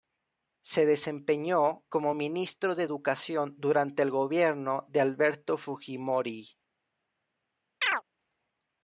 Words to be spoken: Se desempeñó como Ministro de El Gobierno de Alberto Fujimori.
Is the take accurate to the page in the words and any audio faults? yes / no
no